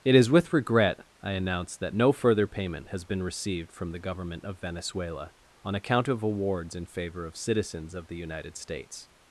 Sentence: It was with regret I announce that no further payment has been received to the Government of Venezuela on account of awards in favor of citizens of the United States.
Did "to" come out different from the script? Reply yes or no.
yes